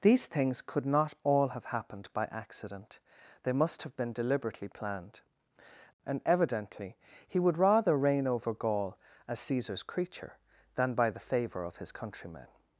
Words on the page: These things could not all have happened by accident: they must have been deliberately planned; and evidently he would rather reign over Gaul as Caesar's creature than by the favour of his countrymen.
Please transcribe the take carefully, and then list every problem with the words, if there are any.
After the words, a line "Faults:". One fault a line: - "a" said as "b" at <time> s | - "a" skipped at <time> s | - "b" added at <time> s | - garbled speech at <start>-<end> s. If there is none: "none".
These things could not all have happened by accident: they must have been deliberately planned; and evidently he would rather reign over Gaul as Caesar's creature than by the favour of his countrymen.
Faults:
none